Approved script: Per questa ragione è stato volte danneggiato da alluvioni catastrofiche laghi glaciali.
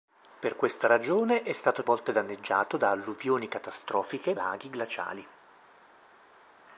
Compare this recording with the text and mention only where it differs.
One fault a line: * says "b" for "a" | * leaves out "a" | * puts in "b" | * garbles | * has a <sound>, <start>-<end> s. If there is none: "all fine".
all fine